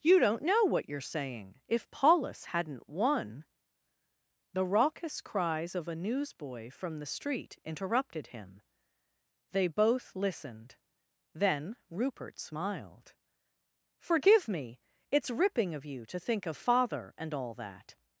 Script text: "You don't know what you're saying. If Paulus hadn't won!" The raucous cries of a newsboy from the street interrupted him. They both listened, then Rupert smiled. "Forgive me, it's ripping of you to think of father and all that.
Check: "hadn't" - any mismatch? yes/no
no